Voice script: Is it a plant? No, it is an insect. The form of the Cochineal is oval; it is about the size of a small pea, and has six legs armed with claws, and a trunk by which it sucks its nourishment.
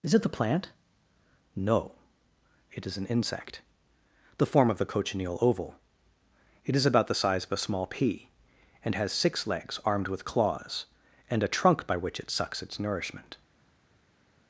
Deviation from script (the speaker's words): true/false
true